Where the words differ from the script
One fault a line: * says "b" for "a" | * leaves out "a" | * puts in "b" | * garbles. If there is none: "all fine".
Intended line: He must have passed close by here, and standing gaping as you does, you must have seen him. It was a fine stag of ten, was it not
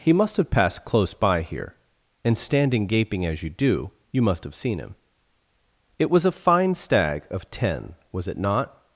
* says "do" for "does"